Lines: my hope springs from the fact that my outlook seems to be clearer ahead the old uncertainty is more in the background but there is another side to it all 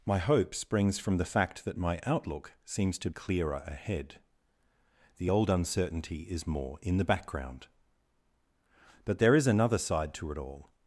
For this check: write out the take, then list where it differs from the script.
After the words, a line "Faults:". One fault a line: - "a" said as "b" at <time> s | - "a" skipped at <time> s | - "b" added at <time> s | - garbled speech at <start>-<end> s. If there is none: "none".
my hope springs from the fact that my outlook seems to clearer ahead the old uncertainty is more in the background but there is another side to it all
Faults:
- "be" skipped at 3.1 s